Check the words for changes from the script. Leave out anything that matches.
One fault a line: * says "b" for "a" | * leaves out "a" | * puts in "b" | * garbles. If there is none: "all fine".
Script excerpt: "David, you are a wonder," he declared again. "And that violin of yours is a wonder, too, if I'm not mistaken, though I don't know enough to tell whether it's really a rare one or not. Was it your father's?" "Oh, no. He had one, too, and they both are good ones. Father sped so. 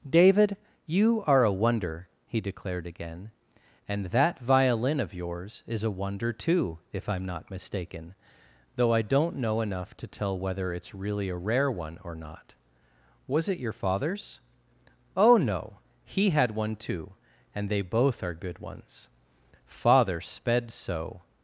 all fine